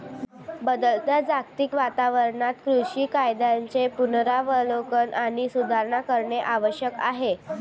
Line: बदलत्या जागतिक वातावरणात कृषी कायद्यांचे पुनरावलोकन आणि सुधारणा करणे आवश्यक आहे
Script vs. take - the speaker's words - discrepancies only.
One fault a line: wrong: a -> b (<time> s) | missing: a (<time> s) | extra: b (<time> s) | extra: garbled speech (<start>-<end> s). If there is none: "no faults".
no faults